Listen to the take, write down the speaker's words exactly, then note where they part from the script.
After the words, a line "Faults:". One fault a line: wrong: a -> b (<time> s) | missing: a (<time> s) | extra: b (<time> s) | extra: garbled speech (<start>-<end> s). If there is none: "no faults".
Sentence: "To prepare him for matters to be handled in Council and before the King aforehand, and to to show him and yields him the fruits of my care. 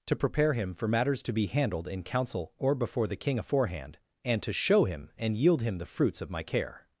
"To prepare him for matters to be handled in Council or before the King aforehand, and to show him and yield him the fruits of my care.
Faults:
wrong: and -> or (2.6 s)
missing: to (4.5 s)
wrong: yields -> yield (5.3 s)